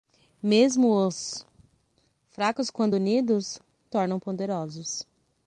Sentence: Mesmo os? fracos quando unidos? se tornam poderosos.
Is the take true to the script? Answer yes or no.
no